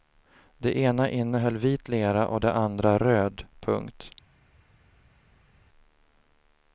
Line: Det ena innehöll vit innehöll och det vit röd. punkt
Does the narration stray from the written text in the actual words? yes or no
yes